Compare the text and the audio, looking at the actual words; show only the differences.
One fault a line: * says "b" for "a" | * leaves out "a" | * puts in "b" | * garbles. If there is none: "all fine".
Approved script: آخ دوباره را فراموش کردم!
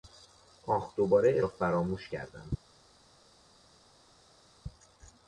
all fine